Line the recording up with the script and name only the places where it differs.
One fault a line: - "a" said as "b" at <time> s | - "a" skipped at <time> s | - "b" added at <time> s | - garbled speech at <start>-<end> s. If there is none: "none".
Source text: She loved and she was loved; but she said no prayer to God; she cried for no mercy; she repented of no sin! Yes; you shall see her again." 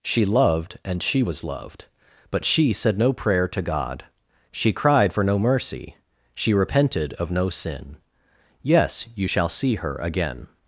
none